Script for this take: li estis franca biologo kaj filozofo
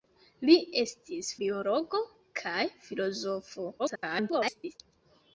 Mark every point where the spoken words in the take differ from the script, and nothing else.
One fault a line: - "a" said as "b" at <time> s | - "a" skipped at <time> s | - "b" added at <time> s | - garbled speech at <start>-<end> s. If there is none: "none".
- "franca" skipped at 1.3 s
- garbled speech at 3.8-4.8 s